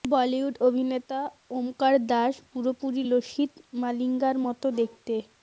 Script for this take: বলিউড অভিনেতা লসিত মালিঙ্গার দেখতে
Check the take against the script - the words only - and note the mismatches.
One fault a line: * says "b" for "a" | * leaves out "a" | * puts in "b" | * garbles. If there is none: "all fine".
* puts in "ওমকার দাস পুরোপুরি"
* puts in "মতো"